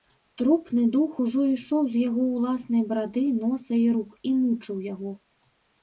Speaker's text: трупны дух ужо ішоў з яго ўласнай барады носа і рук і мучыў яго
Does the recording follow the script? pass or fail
pass